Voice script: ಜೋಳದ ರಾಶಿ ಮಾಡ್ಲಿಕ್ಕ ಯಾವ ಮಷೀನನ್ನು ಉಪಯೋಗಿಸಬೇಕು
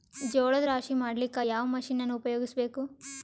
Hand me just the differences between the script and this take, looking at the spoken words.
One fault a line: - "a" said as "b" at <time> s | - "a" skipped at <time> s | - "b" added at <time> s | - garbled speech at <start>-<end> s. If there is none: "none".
none